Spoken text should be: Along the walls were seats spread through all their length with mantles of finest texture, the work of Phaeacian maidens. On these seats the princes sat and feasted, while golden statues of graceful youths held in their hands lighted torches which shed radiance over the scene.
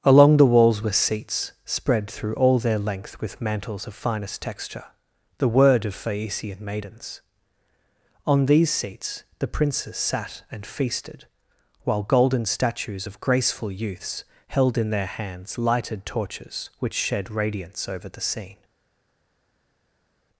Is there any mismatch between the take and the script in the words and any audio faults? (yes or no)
yes